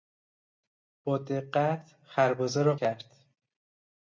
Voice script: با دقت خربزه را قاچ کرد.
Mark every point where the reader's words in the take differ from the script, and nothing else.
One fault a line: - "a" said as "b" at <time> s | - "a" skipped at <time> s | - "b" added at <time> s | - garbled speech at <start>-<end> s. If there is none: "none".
- "قاچ" skipped at 2.8 s